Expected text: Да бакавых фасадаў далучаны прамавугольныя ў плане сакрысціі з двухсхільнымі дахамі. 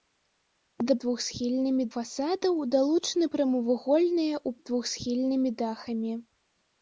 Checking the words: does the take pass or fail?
fail